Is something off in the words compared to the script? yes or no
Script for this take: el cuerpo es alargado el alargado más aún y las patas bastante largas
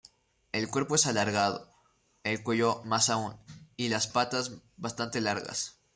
yes